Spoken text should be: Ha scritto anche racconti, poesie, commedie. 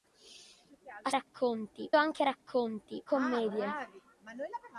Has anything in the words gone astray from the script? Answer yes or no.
yes